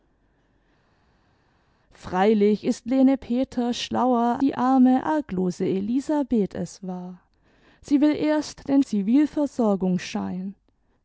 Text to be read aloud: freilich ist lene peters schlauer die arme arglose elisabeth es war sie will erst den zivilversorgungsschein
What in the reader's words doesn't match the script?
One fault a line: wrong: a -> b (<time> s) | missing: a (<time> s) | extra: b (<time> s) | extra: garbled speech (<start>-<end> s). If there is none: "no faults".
no faults